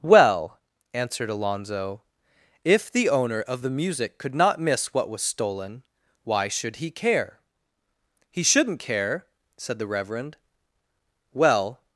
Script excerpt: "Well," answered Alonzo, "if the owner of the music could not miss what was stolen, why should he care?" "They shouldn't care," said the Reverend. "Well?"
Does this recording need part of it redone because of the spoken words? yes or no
yes